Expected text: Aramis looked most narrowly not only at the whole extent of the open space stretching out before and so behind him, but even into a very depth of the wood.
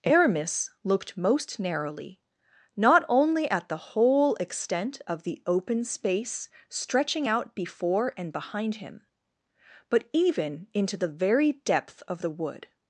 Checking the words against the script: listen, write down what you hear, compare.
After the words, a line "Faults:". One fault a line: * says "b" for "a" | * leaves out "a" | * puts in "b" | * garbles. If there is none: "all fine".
Aramis looked most narrowly not only at the whole extent of the open space stretching out before and behind him, but even into the very depth of the wood.
Faults:
* leaves out "so"
* says "the" for "a"